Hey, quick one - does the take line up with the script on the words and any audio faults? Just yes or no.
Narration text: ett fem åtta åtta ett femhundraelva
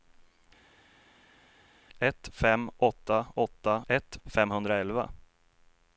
yes